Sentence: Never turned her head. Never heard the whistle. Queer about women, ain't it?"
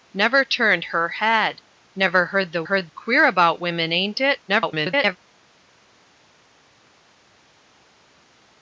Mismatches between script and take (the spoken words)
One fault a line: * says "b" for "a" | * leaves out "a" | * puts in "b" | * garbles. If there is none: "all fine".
* says "heard" for "whistle"
* garbles